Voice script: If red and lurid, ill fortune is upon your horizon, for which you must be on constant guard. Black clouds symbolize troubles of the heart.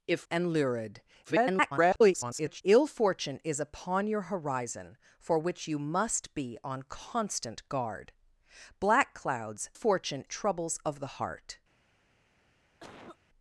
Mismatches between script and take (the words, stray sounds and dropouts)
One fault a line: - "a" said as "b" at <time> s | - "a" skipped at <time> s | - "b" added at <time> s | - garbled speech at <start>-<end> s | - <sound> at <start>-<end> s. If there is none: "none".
- "red" skipped at 0.2 s
- garbled speech at 1.2-2.6 s
- "symbolize" said as "fortune" at 9.7 s
- cough at 12.8-13.2 s